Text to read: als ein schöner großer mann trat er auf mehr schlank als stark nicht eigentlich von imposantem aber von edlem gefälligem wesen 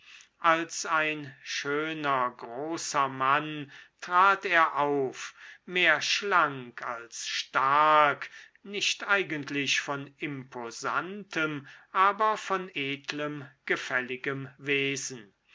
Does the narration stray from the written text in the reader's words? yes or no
no